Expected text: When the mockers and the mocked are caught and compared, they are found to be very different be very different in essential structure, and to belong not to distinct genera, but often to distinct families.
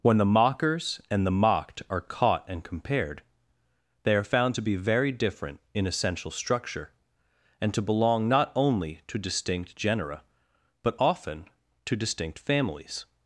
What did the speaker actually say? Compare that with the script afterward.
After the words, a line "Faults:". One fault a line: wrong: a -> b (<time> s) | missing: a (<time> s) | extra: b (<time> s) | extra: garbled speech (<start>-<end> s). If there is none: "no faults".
When the mockers and the mocked are caught and compared, they are found to be very different in essential structure, and to belong not only to distinct genera, but often to distinct families.
Faults:
missing: be very different (5.6 s)
extra: only (8.5 s)